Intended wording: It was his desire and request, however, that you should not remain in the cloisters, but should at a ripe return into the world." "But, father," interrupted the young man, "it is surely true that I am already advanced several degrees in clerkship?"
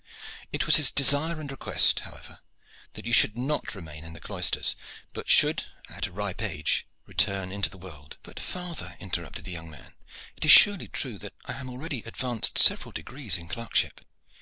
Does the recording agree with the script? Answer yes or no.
no